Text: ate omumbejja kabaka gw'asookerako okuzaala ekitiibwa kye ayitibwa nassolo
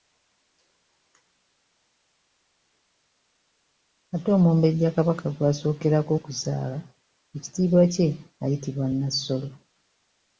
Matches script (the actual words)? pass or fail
pass